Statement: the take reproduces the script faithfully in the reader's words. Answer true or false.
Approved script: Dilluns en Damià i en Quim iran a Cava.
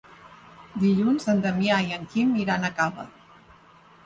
true